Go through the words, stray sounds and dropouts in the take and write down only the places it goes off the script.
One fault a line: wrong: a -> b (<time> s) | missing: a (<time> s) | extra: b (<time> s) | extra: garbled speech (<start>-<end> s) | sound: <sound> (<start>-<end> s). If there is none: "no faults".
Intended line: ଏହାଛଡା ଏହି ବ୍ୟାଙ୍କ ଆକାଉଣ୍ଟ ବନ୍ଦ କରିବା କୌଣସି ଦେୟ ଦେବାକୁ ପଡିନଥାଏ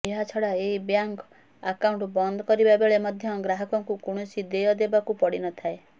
extra: ବେଳେ ମଧ୍ୟ ଗ୍ରାହକଙ୍କୁ (2.8 s)